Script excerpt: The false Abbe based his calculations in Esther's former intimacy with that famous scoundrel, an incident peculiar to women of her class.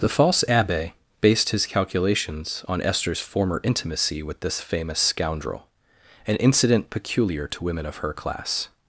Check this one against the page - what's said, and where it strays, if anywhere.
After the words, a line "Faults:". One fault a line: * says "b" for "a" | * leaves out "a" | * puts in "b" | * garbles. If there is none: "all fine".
The false Abbe based his calculations on Esther's former intimacy with this famous scoundrel, an incident peculiar to women of her class.
Faults:
* says "on" for "in"
* says "this" for "that"